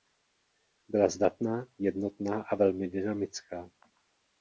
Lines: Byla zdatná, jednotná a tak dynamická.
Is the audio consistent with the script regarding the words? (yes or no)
no